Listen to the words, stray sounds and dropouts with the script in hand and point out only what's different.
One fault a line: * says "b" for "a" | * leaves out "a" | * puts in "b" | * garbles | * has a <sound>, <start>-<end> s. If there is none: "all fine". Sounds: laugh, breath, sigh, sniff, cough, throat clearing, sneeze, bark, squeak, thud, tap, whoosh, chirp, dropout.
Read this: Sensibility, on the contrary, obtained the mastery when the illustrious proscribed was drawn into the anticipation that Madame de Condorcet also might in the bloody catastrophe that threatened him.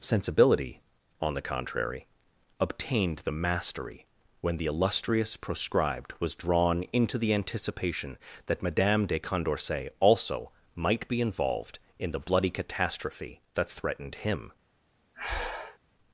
* puts in "be involved"
* has a breath, 15.1-15.8 s